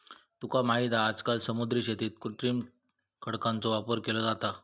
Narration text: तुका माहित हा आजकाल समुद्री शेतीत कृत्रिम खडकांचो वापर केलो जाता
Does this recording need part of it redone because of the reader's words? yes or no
no